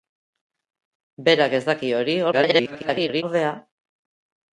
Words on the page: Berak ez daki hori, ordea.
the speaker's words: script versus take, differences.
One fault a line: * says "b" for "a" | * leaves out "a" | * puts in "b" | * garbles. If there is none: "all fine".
* garbles